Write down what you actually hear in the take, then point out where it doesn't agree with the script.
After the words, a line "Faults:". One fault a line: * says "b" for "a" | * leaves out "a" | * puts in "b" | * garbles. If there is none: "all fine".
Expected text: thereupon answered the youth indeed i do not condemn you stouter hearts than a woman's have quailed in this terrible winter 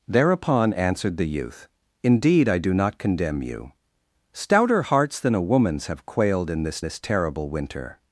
thereupon answered the youth indeed i do not condemn you stouter hearts than a woman's have quailed in this this terrible winter
Faults:
* puts in "this"